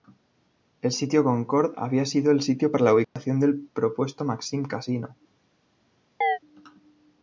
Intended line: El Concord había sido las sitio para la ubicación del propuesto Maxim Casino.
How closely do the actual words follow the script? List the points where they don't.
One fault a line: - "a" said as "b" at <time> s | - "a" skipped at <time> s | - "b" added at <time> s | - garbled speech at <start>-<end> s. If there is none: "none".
- "sitio" added at 0.9 s
- "las" said as "el" at 2.3 s